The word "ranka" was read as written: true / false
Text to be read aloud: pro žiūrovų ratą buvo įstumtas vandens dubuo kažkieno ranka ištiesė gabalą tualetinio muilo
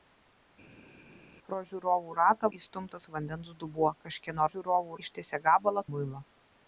false